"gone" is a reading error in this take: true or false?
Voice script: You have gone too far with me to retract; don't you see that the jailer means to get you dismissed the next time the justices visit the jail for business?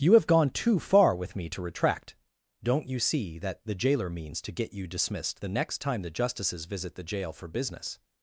false